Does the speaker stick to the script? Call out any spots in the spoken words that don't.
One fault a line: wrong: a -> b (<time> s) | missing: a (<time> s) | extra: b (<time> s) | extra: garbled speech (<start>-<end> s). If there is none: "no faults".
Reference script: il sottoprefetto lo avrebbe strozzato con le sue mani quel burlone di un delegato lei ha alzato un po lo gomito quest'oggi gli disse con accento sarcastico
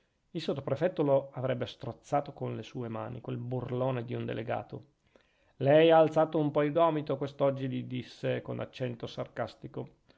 wrong: lo -> il (6.6 s)